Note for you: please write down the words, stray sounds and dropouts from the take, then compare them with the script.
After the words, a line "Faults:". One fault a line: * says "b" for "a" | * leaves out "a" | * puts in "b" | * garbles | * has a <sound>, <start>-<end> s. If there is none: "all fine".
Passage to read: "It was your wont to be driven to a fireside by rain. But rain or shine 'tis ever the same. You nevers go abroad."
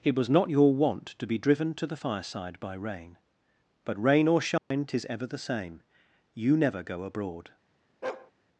"It was not your wont to be driven to the fireside by rain. But rain or shine 'tis ever the same. You never go abroad."
Faults:
* puts in "not"
* says "the" for "a"
* has a dropout, 4.6-4.7 s
* says "never" for "nevers"
* has a bark, 8.0-8.3 s